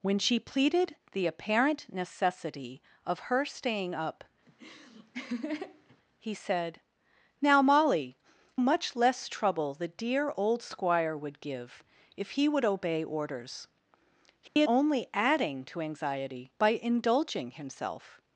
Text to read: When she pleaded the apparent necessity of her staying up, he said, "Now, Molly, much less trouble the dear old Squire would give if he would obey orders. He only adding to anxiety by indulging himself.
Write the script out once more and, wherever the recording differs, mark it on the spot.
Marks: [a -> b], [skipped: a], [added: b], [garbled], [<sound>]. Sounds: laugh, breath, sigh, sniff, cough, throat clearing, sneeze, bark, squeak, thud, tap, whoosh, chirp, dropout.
When she pleaded the apparent necessity of her staying up, [laugh] he said, "Now, Molly, much less trouble the dear old Squire would give if he would obey orders. He [dropout] only adding to anxiety by indulging himself.